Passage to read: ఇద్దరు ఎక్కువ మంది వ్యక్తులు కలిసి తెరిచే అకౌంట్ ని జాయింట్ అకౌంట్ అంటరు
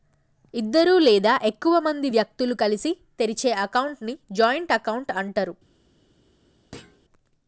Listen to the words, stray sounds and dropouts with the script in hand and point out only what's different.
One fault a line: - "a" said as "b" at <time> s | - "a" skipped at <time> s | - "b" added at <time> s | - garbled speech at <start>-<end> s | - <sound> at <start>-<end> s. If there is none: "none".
- "లేదా" added at 1.0 s
- thud at 6.7-7.0 s